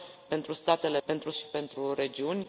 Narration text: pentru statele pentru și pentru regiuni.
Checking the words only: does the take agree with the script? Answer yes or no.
yes